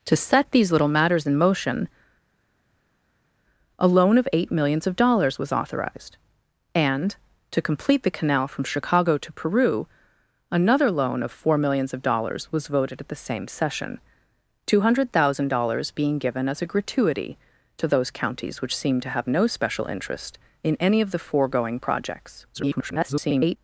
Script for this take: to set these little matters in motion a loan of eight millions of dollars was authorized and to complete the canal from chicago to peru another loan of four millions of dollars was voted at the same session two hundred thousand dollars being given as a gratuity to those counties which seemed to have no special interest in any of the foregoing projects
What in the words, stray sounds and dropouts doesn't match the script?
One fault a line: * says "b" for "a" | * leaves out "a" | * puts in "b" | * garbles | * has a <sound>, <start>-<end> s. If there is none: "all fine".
* garbles